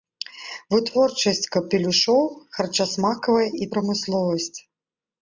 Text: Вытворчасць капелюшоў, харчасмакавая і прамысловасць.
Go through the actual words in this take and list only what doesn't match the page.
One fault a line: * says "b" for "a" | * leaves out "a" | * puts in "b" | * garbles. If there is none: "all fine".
all fine